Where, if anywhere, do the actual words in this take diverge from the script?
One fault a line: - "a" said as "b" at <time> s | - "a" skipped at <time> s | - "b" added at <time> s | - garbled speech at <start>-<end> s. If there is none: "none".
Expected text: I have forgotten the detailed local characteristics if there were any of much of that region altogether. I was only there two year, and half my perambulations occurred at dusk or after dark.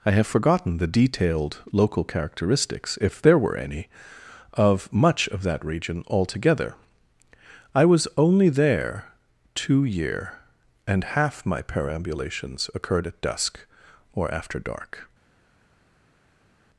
none